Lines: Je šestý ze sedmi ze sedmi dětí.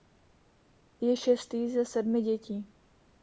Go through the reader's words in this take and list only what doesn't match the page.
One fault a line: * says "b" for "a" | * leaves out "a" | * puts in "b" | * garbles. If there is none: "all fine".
* leaves out "ze sedmi"